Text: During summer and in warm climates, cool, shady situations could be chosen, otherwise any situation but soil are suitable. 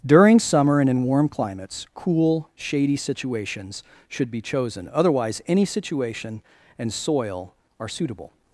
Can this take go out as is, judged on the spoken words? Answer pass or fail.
fail